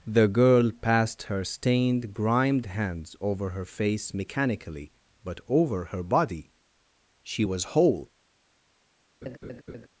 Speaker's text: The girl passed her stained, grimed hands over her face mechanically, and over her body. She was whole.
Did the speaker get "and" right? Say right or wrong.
wrong